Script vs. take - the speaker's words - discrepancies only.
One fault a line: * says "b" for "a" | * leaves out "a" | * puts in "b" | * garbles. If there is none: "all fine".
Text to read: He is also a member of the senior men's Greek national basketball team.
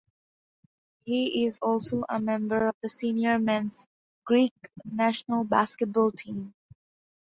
all fine